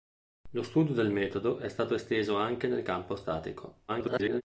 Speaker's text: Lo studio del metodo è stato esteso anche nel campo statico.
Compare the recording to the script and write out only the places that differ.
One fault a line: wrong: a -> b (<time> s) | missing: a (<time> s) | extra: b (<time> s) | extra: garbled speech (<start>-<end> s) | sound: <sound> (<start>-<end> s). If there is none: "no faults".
extra: garbled speech (3.9-4.4 s)